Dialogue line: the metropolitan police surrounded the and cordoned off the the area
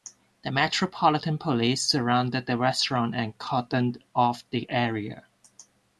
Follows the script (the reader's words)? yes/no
no